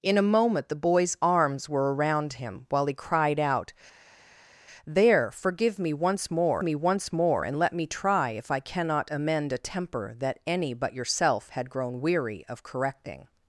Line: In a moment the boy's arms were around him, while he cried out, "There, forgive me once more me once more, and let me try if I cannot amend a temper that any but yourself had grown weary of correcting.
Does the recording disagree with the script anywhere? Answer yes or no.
no